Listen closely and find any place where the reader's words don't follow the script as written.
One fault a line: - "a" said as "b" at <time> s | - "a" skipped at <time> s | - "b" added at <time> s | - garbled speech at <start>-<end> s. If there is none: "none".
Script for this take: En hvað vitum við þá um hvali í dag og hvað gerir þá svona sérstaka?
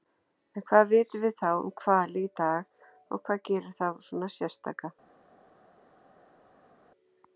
none